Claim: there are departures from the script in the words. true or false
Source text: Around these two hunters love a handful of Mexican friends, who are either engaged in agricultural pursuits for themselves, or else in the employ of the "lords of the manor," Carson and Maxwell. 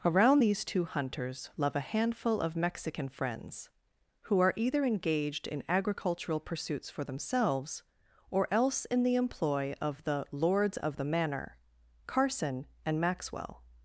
false